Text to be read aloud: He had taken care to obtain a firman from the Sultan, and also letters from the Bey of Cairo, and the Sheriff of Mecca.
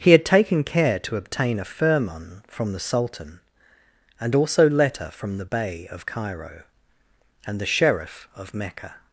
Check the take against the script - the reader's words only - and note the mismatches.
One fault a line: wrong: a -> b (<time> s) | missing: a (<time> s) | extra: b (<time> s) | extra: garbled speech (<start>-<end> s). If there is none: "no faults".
wrong: letters -> letter (4.7 s)